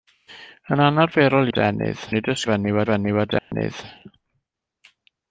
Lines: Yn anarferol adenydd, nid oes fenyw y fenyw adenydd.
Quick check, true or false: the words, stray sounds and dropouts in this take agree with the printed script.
false